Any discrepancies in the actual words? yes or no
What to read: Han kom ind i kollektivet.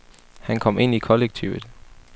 no